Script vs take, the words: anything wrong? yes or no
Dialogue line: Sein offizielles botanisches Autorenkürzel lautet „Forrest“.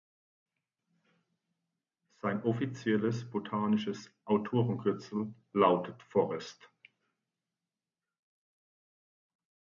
no